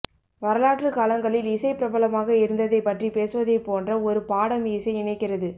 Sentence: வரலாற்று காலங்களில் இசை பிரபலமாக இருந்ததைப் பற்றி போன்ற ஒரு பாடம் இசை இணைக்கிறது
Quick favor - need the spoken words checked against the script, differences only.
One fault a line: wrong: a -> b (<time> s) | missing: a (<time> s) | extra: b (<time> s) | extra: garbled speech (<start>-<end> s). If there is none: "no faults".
extra: பேசுவதைப் (3.1 s)